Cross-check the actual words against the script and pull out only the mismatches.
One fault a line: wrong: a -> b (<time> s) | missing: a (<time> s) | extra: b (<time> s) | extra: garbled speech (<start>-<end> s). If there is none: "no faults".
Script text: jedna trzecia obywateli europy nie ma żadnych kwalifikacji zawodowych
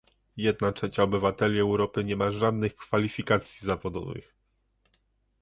no faults